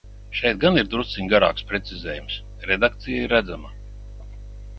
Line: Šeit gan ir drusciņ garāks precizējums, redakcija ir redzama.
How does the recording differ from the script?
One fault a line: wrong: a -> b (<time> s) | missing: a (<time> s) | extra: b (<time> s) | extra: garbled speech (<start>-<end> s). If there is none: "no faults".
no faults